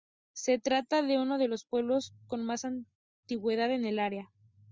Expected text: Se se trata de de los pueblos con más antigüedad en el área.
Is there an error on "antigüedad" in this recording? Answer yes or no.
no